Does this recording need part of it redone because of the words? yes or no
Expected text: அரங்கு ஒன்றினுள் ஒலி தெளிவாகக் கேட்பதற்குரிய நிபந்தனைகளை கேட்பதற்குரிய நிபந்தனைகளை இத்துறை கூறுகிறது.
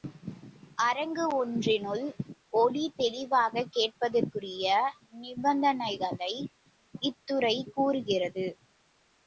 yes